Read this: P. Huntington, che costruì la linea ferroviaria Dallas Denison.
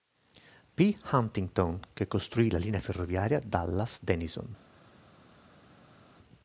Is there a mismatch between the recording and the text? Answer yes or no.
no